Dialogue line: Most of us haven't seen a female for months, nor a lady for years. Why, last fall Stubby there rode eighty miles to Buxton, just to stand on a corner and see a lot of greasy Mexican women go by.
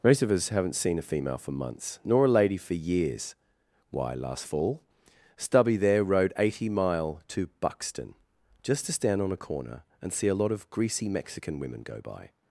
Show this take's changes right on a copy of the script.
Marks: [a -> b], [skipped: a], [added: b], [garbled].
Most of us haven't seen a female for months, nor a lady for years. Why, last fall Stubby there rode eighty [miles -> mile] to Buxton, just to stand on a corner and see a lot of greasy Mexican women go by.